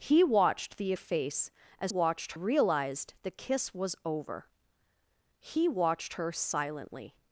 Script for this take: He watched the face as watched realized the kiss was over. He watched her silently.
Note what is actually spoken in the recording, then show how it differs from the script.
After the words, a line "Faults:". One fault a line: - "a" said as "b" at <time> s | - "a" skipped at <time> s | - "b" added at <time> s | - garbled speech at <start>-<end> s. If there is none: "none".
He watched the face as watched realized the kiss was over. He watched her silently.
Faults:
none